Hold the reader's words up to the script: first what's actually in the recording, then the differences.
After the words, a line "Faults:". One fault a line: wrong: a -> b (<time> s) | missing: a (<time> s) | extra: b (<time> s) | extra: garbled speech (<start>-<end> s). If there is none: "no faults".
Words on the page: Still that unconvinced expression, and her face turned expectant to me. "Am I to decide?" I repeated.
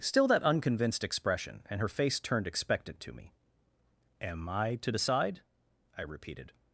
Still that unconvinced expression, and her face turned expectant to me. "Am I to decide?" I repeated.
Faults:
no faults